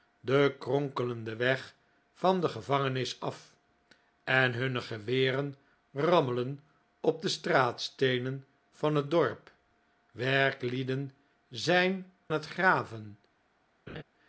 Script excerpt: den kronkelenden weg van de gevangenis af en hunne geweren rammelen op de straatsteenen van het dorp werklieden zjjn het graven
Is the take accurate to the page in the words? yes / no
yes